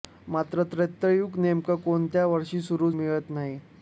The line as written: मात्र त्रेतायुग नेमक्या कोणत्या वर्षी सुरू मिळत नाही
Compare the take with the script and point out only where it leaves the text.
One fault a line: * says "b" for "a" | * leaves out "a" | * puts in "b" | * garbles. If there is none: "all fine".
all fine